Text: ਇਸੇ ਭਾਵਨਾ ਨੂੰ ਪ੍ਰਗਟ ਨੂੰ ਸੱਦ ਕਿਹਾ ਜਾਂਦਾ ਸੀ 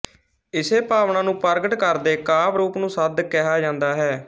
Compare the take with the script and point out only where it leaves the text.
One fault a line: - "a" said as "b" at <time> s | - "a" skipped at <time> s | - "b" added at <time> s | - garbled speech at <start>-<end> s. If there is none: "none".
- "ਕਰਦੇ ਕਾਵਿ ਰੂਪ" added at 1.8 s
- "ਸੀ" said as "ਹੈ" at 3.9 s